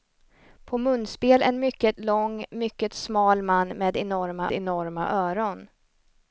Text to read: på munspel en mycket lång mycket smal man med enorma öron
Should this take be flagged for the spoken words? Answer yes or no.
yes